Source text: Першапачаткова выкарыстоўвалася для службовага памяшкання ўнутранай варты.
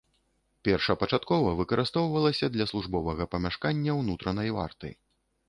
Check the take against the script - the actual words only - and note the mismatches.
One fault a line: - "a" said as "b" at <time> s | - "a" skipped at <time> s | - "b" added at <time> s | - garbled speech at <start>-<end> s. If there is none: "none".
none